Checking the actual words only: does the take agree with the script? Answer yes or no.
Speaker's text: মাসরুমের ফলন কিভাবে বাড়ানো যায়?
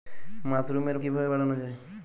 no